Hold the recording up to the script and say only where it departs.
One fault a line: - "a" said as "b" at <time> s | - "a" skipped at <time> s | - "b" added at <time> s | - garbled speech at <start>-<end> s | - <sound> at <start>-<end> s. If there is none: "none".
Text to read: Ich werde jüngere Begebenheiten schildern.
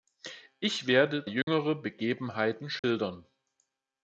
- dropout at 1.4-1.5 s
- dropout at 2.8-2.8 s